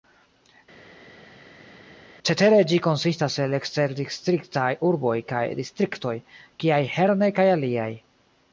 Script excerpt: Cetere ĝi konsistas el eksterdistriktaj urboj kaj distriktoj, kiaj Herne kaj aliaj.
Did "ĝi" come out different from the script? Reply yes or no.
no